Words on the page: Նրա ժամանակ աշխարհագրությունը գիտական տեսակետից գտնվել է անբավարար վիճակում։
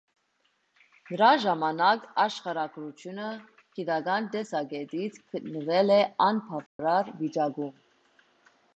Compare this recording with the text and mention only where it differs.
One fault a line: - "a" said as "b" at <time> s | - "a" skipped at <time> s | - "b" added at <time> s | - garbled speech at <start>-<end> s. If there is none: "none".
none